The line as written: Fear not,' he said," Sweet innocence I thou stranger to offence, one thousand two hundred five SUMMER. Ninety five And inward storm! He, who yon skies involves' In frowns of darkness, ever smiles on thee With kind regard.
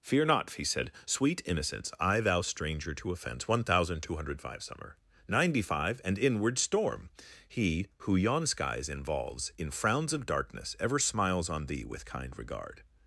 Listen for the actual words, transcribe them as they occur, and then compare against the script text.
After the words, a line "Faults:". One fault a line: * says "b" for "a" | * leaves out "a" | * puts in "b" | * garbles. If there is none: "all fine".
Fear not,' he said," Sweet innocence I thou stranger to offence, one thousand two hundred five SUMMER. Ninety five And inward storm! He, who yon skies involves' In frowns of darkness, ever smiles on thee With kind regard.
Faults:
all fine